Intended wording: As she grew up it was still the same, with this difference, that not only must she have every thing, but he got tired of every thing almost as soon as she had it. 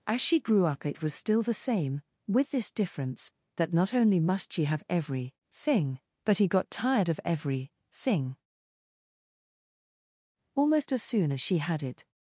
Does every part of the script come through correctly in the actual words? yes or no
yes